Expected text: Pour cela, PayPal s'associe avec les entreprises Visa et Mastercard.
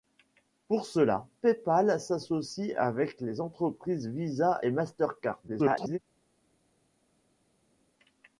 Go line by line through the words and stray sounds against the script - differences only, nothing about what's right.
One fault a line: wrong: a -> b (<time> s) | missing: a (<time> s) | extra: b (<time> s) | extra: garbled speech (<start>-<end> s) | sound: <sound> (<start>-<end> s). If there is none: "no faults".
extra: garbled speech (5.5-6.0 s)